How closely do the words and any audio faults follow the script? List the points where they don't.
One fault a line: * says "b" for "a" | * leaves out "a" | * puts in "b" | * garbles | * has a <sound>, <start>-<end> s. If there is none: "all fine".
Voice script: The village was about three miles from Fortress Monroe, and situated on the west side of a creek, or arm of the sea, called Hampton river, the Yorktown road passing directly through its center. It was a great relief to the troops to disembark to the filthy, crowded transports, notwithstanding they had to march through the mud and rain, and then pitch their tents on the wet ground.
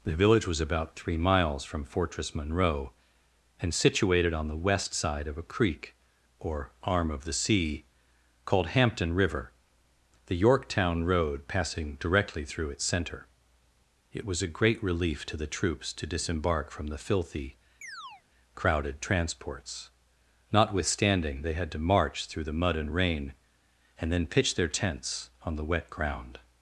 * says "from" for "to"
* has a chirp, 17.8-18.2 s